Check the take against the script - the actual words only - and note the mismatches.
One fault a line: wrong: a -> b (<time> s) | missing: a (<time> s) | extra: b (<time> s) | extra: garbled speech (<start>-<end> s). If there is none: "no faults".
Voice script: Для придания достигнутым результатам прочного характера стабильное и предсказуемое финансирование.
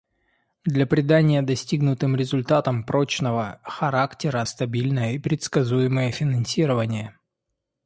no faults